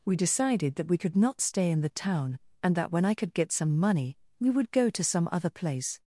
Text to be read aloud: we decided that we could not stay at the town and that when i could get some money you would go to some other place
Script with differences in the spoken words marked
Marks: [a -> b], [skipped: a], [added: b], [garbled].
we decided that we could not stay [at -> in] the town and that when i could get some money [you -> we] would go to some other place